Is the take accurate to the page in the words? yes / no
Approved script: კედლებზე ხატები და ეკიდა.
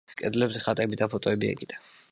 no